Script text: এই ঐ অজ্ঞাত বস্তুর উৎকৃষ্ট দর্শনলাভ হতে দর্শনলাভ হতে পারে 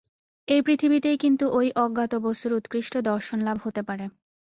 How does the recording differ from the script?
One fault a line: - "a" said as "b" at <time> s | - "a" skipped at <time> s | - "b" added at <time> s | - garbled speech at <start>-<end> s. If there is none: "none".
- "পৃথিবীতেই কিন্তু" added at 0.6 s
- "দর্শনলাভ হতে" skipped at 3.8 s